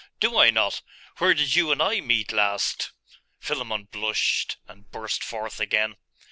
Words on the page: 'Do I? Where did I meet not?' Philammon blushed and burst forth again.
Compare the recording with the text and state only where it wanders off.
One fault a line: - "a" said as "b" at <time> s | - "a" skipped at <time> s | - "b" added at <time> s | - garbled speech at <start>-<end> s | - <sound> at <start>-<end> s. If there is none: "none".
- "not" added at 0.5 s
- "you and" added at 1.6 s
- "not" said as "last" at 2.3 s